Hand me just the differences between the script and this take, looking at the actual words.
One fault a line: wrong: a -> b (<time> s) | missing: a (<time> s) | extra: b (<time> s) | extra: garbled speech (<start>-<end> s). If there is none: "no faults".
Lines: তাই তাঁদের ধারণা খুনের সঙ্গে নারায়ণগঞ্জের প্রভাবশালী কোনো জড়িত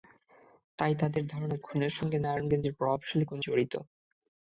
no faults